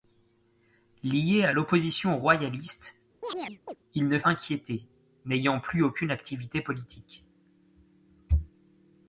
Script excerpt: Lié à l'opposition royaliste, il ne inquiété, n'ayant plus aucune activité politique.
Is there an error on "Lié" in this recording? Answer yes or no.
no